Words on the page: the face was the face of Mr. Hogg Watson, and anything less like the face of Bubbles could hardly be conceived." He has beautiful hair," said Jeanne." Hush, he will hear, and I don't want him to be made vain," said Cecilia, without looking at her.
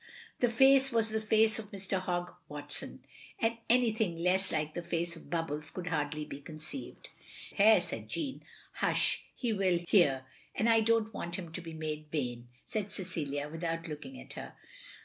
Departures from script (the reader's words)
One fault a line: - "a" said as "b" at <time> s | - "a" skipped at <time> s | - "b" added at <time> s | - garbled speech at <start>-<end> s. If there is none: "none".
- "He has beautiful" skipped at 7.1 s